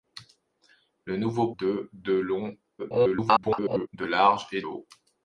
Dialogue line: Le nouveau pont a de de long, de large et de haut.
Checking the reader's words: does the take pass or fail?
fail